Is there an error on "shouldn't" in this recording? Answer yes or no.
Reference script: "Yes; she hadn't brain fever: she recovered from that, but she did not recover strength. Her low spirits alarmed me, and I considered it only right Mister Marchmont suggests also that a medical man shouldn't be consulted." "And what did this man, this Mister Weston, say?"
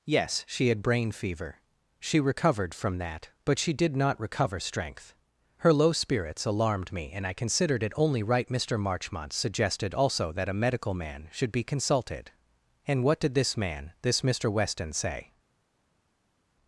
yes